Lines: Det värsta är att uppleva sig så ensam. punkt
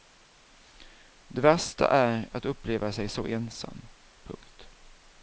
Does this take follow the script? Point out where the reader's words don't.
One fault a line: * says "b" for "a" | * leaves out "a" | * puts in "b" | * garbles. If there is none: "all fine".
all fine